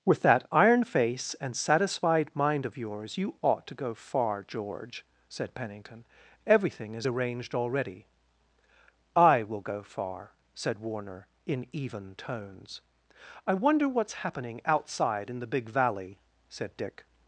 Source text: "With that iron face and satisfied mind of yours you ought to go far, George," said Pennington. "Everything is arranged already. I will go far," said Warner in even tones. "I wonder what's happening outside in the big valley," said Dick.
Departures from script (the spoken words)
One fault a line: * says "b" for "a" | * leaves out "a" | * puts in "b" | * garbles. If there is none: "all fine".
all fine